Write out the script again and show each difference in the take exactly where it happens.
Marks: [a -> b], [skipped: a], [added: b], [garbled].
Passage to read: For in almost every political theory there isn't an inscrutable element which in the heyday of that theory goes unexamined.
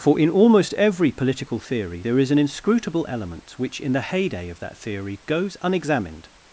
For in almost every political theory there [isn't -> is] an inscrutable element which in the heyday of that theory goes unexamined.